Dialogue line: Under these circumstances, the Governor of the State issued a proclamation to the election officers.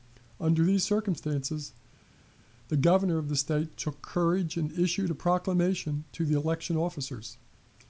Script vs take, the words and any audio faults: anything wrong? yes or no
yes